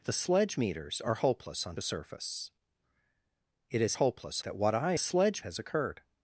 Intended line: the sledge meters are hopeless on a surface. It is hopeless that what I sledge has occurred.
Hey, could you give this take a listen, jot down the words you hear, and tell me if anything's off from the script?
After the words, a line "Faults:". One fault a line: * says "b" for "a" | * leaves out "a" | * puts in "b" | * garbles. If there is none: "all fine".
the sledge meters are hopeless on a surface. It is hopeless that what I sledge has occurred.
Faults:
all fine